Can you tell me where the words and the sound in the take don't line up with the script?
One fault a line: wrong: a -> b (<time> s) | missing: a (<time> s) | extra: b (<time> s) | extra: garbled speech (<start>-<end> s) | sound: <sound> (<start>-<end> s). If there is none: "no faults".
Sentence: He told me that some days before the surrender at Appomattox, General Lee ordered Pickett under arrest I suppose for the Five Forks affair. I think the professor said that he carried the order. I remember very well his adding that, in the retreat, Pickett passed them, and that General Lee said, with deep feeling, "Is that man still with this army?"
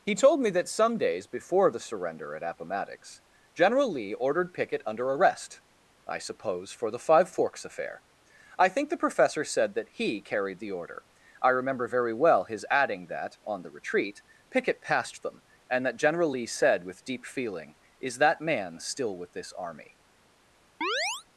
wrong: in -> on (13.4 s)
sound: chirp (20.8-21.2 s)